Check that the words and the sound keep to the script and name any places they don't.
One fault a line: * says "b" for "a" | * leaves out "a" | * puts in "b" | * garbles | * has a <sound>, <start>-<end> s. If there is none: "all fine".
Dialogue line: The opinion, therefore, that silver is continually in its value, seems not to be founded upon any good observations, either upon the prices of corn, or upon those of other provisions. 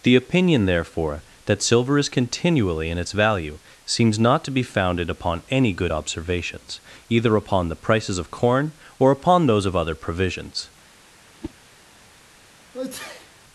* has a whoosh, 11.4-11.5 s
* has a sneeze, 12.7-13.3 s